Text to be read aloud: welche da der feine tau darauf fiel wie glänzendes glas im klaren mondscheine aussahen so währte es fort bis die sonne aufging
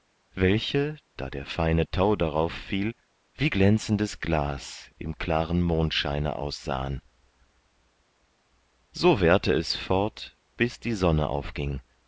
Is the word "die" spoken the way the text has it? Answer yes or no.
yes